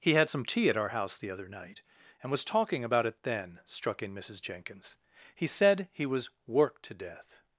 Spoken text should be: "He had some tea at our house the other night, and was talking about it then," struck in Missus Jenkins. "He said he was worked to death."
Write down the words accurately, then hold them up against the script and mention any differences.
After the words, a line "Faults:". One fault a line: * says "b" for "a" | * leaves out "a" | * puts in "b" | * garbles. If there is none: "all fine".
"He had some tea at our house the other night, and was talking about it then," struck in Missus Jenkins. "He said he was worked to death."
Faults:
all fine